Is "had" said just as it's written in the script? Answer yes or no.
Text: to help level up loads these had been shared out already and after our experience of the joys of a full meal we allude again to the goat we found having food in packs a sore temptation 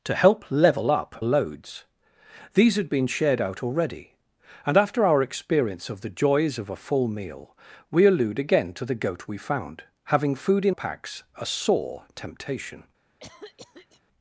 yes